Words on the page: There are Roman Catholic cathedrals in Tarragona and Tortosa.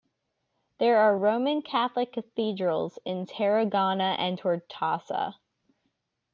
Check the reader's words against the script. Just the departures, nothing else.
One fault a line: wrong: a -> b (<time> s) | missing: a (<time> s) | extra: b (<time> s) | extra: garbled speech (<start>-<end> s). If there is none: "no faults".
no faults